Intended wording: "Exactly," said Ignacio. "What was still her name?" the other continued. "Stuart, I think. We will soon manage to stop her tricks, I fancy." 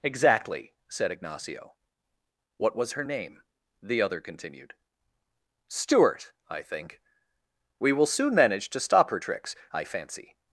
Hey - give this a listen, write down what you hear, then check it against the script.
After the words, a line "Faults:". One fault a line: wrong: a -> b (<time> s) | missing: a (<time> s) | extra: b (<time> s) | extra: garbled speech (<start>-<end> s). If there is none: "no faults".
"Exactly," said Ignacio. "What was her name?" the other continued. "Stuart, I think. We will soon manage to stop her tricks, I fancy."
Faults:
missing: still (2.9 s)